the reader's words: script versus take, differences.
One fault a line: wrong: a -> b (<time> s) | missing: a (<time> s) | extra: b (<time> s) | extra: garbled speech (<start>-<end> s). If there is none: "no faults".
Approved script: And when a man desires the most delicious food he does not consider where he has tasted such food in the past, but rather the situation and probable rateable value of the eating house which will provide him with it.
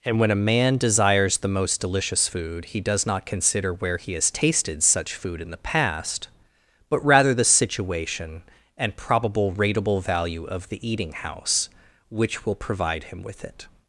no faults